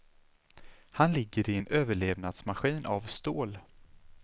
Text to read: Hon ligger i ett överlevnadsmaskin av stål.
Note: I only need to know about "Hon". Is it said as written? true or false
false